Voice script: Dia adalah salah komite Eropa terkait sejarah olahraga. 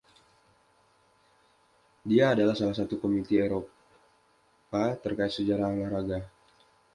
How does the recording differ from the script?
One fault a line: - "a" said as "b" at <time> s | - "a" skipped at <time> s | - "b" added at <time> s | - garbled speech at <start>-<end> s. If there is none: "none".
- "satu" added at 2.7 s